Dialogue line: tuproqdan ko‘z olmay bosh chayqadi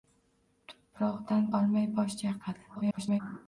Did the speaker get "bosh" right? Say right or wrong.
right